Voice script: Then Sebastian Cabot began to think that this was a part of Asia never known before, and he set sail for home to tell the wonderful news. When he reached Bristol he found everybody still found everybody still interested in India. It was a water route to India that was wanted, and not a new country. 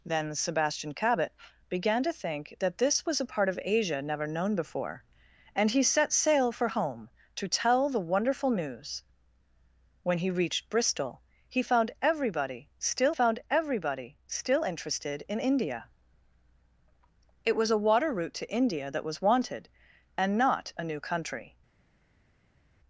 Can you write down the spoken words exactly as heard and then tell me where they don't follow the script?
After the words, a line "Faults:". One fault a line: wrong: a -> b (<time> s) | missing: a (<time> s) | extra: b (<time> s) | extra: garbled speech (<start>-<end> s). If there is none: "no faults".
Then Sebastian Cabot began to think that this was a part of Asia never known before, and he set sail for home to tell the wonderful news. When he reached Bristol he found everybody still found everybody still interested in India. It was a water route to India that was wanted, and not a new country.
Faults:
no faults